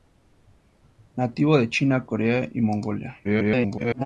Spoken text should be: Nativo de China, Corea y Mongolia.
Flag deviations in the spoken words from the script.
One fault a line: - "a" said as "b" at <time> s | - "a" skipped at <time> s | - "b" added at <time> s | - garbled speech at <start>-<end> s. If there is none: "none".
- garbled speech at 3.2-4.1 s